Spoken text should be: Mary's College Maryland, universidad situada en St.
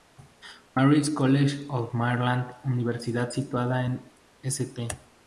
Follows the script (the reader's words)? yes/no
no